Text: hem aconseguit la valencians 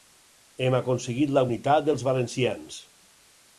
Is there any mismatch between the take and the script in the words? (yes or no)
yes